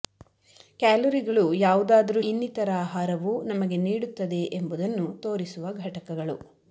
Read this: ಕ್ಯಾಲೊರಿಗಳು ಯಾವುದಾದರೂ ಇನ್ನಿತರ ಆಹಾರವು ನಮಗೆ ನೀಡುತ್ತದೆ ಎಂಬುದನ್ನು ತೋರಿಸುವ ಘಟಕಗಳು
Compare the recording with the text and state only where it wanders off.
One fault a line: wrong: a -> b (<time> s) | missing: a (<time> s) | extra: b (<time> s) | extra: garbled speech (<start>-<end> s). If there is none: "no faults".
no faults